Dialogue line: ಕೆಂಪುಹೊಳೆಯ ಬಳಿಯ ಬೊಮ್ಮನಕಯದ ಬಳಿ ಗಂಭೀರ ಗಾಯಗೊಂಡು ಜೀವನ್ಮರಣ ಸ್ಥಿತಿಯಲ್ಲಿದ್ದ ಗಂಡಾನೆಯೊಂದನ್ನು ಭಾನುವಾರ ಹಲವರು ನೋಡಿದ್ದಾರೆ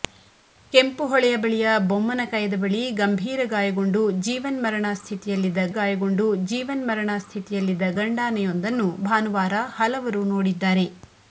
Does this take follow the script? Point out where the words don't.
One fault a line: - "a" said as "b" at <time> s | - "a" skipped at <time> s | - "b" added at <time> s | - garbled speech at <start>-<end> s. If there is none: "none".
- "ಗಾಯಗೊಂಡು ಜೀವನ್ಮರಣ ಸ್ಥಿತಿಯಲ್ಲಿದ್ದ" added at 5.7 s